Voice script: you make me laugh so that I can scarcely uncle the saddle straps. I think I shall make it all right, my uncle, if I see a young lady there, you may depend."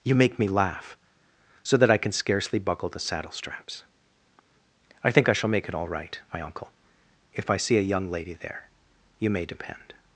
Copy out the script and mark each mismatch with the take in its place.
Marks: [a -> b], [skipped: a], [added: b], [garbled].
you make me laugh so that I can scarcely [uncle -> buckle] the saddle straps. I think I shall make it all right, my uncle, if I see a young lady there, you may depend."